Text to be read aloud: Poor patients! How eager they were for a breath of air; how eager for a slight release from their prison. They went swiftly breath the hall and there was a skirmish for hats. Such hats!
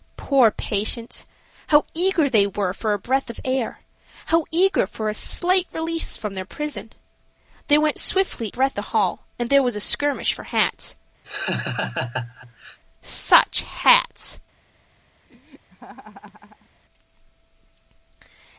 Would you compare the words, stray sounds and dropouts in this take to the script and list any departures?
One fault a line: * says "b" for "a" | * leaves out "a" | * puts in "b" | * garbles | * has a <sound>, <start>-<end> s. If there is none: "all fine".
* has a laugh, 11.2-12.8 s
* has a laugh, 15.3-16.7 s